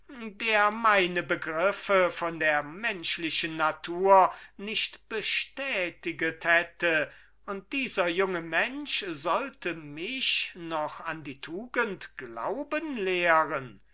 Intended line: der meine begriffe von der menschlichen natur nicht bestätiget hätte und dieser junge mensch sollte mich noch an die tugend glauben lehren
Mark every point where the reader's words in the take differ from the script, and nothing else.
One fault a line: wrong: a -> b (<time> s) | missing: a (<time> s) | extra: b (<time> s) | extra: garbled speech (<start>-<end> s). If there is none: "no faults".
no faults